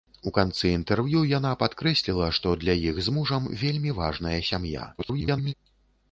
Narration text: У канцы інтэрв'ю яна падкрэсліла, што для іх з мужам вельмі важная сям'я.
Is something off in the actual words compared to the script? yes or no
yes